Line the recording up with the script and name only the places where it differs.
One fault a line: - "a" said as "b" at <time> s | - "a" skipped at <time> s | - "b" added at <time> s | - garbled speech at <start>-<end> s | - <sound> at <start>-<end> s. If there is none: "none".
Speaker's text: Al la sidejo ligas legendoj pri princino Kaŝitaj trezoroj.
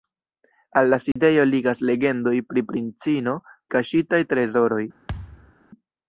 - dropout at 1.1-1.2 s
- thud at 5.1-5.5 s